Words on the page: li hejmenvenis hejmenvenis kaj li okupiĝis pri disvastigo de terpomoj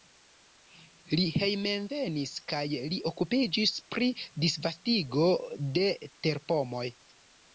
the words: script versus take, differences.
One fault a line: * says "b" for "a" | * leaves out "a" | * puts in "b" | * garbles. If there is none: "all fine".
* leaves out "hejmenvenis"